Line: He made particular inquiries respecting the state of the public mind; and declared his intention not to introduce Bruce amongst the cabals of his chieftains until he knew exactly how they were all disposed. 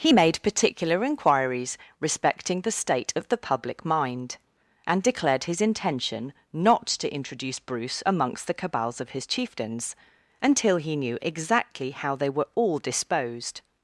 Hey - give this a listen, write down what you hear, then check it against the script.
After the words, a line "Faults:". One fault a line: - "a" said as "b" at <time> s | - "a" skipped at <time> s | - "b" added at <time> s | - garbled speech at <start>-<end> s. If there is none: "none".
He made particular inquiries respecting the state of the public mind; and declared his intention not to introduce Bruce amongst the cabals of his chieftains until he knew exactly how they were all disposed.
Faults:
none